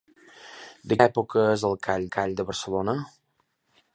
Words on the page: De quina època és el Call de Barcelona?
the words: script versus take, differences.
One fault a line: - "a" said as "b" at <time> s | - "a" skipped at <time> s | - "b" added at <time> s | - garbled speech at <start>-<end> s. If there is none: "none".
- "quina" skipped at 1.0 s
- "Call" added at 2.2 s